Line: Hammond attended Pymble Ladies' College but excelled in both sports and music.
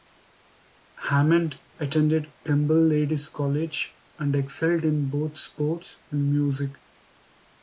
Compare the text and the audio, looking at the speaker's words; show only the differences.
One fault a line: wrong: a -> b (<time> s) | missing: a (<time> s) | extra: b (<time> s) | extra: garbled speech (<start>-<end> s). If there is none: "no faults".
wrong: but -> and (4.2 s)